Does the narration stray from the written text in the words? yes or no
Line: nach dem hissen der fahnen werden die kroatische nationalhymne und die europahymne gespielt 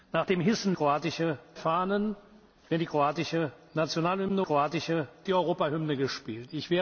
yes